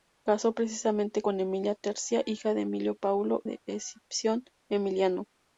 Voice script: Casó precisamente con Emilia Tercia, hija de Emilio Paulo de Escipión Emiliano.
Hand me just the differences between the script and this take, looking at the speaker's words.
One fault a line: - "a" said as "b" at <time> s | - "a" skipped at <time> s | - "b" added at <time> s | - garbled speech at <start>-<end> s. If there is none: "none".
none